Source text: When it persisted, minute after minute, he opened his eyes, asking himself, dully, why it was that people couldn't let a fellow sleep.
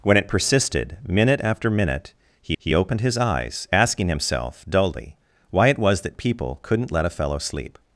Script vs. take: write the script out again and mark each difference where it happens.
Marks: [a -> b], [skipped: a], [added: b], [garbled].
When it persisted, minute after minute, he [added: he] opened his eyes, asking himself, dully, why it was that people couldn't let a fellow sleep.